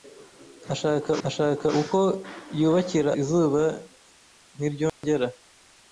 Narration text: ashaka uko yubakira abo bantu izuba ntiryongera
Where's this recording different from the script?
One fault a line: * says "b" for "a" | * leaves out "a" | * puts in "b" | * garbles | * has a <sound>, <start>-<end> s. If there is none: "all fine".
* puts in "ashaka"
* leaves out "abo bantu"
* has a dropout, 4.9-5.0 s